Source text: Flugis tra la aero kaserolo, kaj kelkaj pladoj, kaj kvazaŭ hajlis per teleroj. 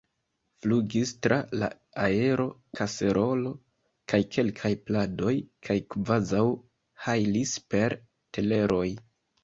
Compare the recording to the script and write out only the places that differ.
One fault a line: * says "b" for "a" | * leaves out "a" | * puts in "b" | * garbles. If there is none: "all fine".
all fine